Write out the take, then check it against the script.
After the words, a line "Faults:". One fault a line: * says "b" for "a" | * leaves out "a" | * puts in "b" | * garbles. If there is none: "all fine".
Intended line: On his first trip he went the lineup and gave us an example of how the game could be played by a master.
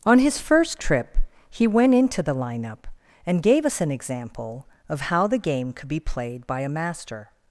On his first trip he went into the lineup and gave us an example of how the game could be played by a master.
Faults:
* puts in "into"